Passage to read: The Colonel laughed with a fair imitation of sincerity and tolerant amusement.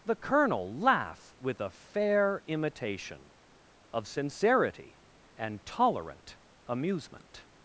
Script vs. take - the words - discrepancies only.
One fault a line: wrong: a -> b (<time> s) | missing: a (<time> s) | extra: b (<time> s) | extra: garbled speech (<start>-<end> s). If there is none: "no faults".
wrong: laughed -> laugh (0.8 s)